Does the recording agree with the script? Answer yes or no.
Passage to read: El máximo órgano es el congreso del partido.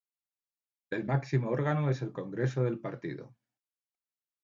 yes